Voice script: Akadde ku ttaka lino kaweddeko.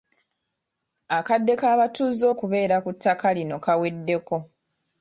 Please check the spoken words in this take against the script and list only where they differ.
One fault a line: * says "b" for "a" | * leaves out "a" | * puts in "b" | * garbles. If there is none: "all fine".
* puts in "k'abatuuze okubeera"